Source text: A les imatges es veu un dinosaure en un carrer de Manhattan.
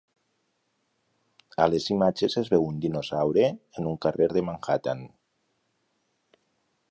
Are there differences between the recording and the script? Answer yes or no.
no